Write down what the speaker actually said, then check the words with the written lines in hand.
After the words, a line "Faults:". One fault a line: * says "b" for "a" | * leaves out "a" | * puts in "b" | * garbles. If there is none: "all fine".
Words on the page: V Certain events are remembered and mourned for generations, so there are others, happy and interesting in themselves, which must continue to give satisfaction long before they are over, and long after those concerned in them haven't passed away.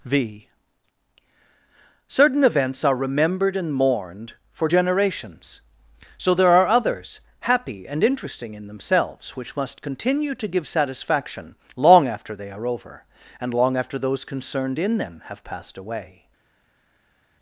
V Certain events are remembered and mourned for generations, so there are others, happy and interesting in themselves, which must continue to give satisfaction long after they are over, and long after those concerned in them have passed away.
Faults:
* says "after" for "before"
* says "have" for "haven't"